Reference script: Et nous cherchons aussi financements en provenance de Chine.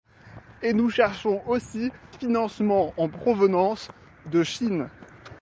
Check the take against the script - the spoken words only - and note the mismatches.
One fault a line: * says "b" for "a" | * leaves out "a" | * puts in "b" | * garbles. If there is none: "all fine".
all fine